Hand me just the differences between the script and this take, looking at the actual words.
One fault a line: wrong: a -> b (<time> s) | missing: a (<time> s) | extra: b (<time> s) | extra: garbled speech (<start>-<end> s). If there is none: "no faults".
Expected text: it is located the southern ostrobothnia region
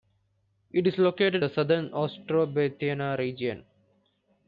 no faults